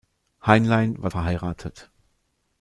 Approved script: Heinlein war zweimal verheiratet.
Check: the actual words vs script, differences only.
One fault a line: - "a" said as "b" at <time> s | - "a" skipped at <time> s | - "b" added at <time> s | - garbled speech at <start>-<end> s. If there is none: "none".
- "zweimal" skipped at 1.1 s